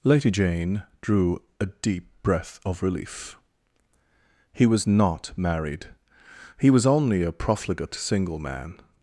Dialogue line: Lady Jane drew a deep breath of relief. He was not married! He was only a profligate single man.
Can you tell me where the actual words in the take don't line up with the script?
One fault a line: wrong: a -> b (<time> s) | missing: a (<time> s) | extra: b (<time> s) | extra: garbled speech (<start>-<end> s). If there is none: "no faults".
no faults